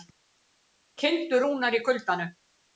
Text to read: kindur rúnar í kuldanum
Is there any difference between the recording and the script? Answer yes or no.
no